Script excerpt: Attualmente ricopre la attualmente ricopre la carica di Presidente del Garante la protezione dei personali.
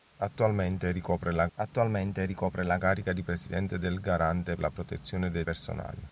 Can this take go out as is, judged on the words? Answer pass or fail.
pass